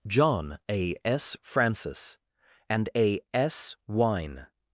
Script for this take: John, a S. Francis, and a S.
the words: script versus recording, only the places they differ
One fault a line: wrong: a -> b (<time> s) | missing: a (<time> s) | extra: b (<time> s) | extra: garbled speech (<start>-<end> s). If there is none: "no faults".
extra: wine (3.9 s)